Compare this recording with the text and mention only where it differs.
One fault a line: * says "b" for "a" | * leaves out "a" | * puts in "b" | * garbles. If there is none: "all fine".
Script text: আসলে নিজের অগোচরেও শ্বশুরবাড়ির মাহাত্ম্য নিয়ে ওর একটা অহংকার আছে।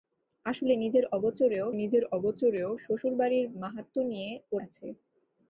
* puts in "নিজের অগোচরেও"
* leaves out "একটা অহংকার"